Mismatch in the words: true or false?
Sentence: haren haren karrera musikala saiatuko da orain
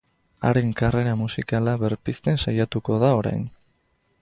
true